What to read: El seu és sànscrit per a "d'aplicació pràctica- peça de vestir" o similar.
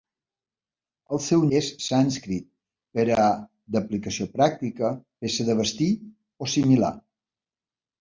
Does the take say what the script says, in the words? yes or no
yes